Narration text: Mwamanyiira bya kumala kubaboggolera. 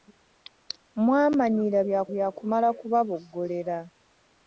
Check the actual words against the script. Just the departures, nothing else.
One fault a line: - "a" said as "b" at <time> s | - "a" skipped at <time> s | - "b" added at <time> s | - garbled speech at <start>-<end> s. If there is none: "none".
- "bya" added at 2.1 s